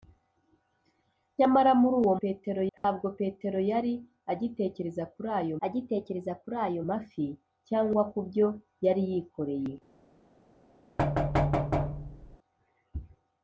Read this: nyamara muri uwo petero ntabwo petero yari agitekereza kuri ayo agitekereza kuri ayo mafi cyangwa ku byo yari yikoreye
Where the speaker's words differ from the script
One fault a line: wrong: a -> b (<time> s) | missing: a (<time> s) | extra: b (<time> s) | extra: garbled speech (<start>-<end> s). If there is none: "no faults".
no faults